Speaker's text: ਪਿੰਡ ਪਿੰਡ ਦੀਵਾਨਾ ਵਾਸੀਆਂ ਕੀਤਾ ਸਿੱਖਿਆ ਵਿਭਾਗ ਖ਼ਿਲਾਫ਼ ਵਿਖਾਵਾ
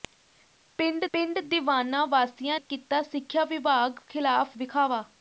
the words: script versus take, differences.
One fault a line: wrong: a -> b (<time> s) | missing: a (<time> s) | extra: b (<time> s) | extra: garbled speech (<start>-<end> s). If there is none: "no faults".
no faults